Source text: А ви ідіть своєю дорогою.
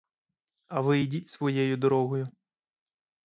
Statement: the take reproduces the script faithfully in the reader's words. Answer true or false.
true